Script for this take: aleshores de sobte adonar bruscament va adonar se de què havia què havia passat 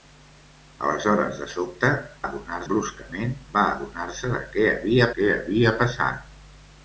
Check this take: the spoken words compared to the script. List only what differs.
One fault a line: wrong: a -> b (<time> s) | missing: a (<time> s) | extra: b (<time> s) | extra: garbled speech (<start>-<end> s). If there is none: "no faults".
no faults